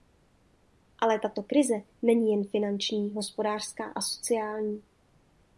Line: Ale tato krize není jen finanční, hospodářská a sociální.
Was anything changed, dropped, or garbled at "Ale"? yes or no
no